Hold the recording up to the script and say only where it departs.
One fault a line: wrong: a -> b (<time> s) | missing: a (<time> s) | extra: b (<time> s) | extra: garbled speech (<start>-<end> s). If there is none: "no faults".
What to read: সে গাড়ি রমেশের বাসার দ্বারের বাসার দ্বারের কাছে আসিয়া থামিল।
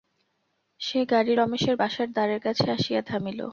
missing: বাসার দ্বারের (2.4 s)